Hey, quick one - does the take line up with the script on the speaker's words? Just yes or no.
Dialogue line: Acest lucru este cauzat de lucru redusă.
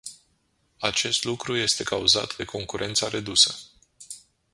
no